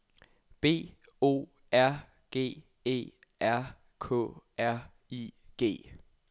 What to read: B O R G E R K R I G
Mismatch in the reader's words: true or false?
false